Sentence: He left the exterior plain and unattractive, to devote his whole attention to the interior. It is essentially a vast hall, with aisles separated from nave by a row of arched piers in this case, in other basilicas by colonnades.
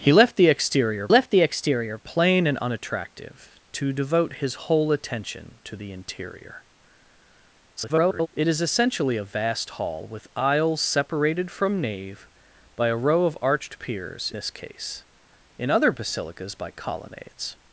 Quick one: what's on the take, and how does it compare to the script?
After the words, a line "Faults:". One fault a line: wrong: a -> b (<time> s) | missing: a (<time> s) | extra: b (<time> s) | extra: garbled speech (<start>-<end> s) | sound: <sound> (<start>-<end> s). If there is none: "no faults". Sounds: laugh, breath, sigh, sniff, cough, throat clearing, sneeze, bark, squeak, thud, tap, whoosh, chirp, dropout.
He left the exterior left the exterior plain and unattractive, to devote his whole attention to the interior. [garbled] It is essentially a vast hall, with aisles separated from nave by a row of arched piers this case, in other basilicas by colonnades.
Faults:
extra: left the exterior (1.1 s)
extra: garbled speech (7.8-8.3 s)
missing: in (14.3 s)